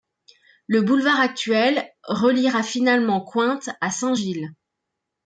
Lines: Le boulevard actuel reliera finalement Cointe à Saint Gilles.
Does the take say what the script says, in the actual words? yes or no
yes